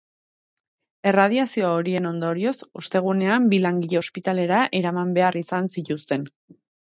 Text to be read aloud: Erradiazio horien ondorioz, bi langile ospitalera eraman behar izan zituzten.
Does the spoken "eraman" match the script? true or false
true